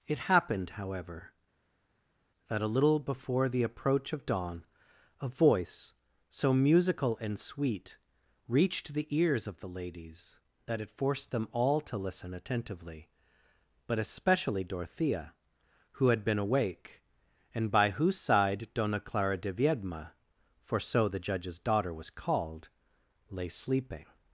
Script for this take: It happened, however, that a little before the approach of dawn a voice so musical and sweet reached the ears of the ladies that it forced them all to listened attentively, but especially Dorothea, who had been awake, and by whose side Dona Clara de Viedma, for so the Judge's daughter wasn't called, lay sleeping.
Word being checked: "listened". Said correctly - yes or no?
no